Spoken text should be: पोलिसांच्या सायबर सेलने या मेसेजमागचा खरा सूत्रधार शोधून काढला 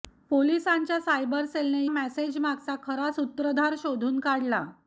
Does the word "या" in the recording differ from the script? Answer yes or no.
yes